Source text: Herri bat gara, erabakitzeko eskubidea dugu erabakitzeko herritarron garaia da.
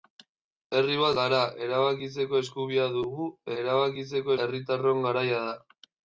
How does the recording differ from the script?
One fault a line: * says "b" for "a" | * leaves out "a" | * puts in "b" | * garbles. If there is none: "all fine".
all fine